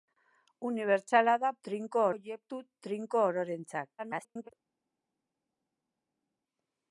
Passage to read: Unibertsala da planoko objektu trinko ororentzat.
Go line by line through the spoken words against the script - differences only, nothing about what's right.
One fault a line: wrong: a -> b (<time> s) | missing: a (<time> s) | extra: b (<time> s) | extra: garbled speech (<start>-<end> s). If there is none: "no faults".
wrong: planoko -> trinko (1.7 s)
extra: garbled speech (4.0-4.5 s)